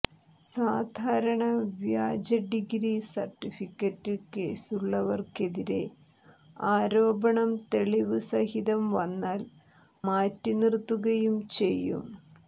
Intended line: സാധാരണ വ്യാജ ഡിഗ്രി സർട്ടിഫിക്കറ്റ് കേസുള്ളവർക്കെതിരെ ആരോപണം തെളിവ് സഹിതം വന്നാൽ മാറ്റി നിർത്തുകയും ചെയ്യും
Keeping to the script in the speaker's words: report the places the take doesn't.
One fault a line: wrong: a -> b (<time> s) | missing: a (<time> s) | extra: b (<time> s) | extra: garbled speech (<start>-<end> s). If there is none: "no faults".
no faults